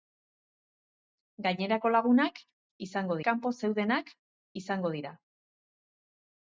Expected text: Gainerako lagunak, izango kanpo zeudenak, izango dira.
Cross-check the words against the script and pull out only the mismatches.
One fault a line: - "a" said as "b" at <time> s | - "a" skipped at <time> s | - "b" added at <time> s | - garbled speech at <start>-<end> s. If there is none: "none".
none